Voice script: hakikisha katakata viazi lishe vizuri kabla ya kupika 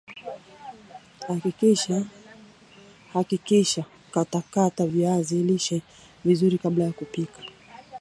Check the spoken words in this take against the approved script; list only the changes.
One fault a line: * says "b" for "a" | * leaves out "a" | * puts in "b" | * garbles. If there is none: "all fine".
all fine